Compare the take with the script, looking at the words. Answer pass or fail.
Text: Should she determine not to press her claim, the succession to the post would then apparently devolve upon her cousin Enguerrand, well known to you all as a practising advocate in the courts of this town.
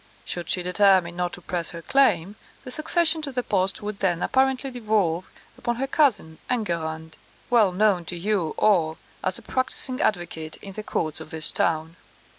pass